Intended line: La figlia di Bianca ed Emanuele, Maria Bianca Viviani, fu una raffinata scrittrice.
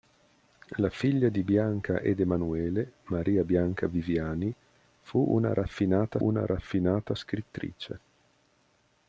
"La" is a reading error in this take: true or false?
false